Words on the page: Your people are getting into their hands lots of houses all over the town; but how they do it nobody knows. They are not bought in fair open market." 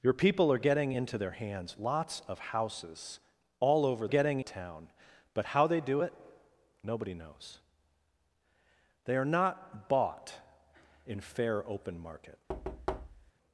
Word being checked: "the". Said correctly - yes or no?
no